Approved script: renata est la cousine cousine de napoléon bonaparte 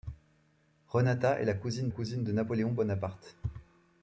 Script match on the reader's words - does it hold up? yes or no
yes